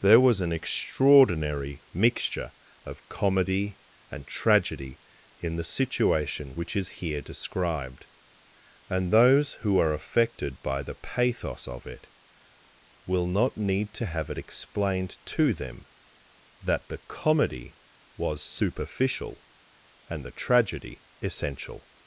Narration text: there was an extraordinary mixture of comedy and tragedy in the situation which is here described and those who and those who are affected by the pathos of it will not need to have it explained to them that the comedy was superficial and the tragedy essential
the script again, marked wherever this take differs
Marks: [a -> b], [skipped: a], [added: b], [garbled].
there was an extraordinary mixture of comedy and tragedy in the situation which is here described and those who [skipped: and those who] are affected by the pathos of it will not need to have it explained to them that the comedy was superficial and the tragedy essential